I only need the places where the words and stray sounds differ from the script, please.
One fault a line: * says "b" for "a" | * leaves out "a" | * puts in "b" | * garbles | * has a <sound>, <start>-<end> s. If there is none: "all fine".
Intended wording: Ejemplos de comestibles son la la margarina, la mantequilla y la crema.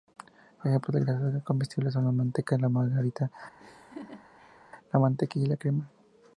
* puts in "grasas"
* puts in "manteca"
* has a laugh, 3.6-4.6 s